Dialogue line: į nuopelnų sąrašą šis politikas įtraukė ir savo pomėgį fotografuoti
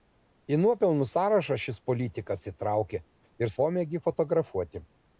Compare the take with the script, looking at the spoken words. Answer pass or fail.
fail